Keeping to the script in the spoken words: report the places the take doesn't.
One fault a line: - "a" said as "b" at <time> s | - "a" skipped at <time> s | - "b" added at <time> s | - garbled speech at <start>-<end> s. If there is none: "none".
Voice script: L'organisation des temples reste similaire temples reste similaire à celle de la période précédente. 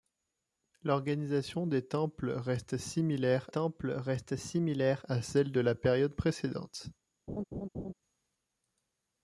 none